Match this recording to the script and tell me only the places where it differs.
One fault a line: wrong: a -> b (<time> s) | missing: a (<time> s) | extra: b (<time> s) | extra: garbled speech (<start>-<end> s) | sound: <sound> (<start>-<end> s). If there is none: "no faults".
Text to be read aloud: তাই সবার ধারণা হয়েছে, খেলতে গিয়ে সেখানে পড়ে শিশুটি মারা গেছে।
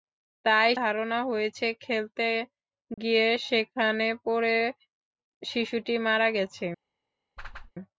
missing: সবার (0.7 s)
sound: dropout (2.9-3.0 s)
sound: whoosh (7.4-7.7 s)